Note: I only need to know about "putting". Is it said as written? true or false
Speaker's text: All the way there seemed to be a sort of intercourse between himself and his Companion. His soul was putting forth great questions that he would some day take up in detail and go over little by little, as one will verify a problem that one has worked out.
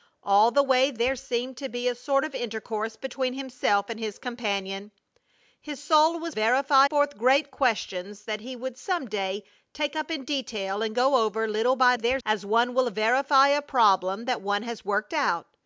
false